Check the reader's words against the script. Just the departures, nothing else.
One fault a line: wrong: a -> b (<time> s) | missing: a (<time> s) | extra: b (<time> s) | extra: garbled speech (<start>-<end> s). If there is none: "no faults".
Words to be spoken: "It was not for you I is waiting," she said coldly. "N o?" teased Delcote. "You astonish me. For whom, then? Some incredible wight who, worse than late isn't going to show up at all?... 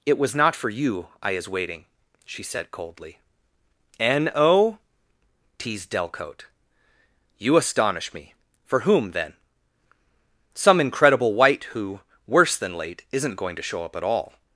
no faults